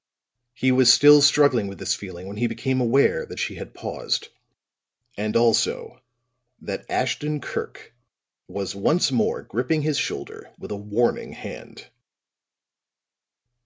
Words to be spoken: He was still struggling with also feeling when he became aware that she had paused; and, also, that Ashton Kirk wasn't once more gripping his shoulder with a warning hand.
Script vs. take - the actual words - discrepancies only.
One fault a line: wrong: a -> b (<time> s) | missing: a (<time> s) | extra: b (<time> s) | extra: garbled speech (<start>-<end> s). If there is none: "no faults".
wrong: also -> this (1.8 s)
wrong: wasn't -> was (8.5 s)